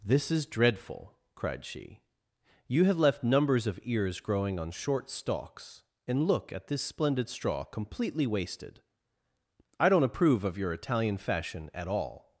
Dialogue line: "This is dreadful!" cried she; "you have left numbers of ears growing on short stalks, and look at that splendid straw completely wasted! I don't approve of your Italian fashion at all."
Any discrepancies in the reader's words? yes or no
yes